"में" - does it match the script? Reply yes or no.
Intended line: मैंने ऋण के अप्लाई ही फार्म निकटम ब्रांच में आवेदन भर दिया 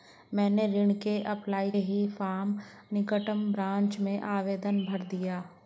yes